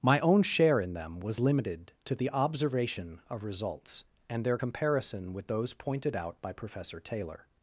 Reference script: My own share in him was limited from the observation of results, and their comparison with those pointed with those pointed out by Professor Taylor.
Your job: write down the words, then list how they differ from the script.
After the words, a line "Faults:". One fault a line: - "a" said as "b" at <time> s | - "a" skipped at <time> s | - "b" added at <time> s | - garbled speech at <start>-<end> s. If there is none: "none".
My own share in them was limited to the observation of results, and their comparison with those pointed out by Professor Taylor.
Faults:
- "him" said as "them" at 0.9 s
- "from" said as "to" at 2.0 s
- "with those pointed" skipped at 6.2 s